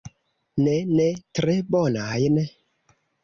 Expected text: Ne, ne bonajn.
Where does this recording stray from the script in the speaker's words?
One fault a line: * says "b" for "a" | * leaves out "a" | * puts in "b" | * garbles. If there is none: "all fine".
* puts in "tre"